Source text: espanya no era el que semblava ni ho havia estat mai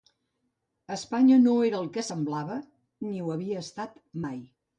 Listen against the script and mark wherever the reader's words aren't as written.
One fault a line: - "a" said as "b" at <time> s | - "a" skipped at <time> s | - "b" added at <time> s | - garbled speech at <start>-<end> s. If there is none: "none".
none